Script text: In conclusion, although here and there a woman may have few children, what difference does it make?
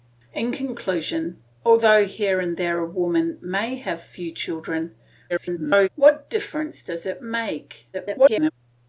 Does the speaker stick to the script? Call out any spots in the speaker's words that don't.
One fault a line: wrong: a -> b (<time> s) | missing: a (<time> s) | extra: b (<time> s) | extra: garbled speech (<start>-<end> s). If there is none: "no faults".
extra: garbled speech (5.3-5.9 s)
extra: garbled speech (7.9-8.5 s)